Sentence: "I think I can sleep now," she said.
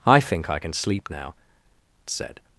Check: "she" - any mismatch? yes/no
yes